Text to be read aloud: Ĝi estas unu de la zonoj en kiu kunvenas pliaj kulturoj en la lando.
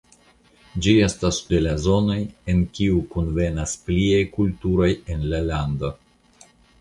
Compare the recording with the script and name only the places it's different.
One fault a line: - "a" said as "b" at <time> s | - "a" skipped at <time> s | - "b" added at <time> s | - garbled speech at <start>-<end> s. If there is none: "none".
- "unu" skipped at 1.4 s